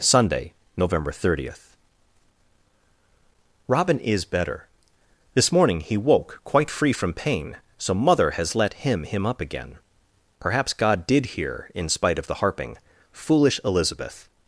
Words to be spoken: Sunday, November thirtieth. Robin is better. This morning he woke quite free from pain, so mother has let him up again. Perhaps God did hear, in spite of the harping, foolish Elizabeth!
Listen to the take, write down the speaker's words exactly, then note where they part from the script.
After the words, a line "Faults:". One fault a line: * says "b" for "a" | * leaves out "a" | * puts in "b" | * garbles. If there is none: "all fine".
Sunday, November thirtieth. Robin is better. This morning he woke quite free from pain, so mother has let him him up again. Perhaps God did hear, in spite of the harping, foolish Elizabeth!
Faults:
* puts in "him"